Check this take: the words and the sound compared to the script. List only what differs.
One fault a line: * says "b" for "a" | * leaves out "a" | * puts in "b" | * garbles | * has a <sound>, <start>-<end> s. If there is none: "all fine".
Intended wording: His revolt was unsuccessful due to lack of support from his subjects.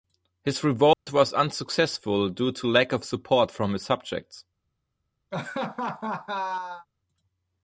* has a dropout, 0.9-1.1 s
* has a laugh, 5.3-6.9 s